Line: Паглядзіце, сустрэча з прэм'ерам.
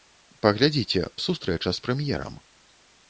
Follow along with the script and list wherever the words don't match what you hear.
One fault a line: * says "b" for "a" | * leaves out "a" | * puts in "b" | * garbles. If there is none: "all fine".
all fine